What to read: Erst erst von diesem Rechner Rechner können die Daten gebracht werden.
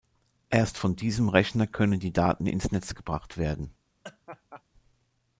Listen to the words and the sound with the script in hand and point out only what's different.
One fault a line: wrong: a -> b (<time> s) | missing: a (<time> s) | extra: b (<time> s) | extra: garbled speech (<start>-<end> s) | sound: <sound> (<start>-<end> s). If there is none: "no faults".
missing: erst (0.8 s)
missing: Rechner (1.7 s)
extra: ins Netz (2.5 s)
sound: laugh (4.0-4.6 s)